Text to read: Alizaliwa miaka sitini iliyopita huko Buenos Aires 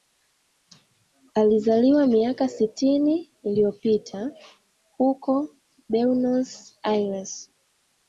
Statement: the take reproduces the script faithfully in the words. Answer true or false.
true